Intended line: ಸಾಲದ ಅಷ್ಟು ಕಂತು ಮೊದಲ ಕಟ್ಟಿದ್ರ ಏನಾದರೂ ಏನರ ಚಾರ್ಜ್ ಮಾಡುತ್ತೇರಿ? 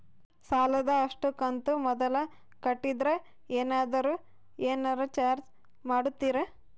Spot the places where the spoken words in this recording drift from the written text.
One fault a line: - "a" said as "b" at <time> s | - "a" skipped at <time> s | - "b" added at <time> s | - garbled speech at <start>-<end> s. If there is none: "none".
none